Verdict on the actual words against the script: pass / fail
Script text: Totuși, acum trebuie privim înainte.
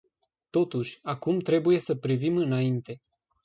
fail